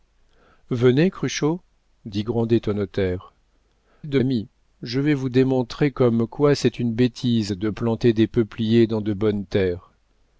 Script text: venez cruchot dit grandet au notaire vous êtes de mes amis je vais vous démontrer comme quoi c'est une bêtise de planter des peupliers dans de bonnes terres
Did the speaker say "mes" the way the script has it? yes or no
no